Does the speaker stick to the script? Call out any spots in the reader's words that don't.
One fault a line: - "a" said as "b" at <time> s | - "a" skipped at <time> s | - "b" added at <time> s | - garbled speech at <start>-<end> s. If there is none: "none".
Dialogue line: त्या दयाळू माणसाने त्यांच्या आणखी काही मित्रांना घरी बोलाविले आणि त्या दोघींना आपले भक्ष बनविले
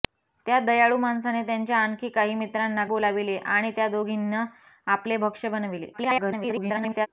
- "घरी" skipped at 2.9 s
- garbled speech at 5.9-7.1 s